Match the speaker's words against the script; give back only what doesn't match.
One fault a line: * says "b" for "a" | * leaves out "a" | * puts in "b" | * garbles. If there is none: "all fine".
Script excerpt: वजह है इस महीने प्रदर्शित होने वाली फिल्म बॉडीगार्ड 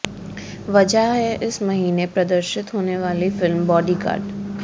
all fine